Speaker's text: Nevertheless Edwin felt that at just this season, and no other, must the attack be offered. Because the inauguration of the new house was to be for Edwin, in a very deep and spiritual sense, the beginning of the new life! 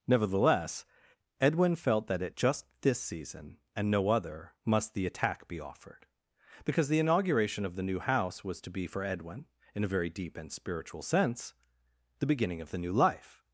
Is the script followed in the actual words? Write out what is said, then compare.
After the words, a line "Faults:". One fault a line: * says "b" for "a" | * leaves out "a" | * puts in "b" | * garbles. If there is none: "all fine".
Nevertheless Edwin felt that at just this season, and no other, must the attack be offered. Because the inauguration of the new house was to be for Edwin, in a very deep and spiritual sense, the beginning of the new life!
Faults:
all fine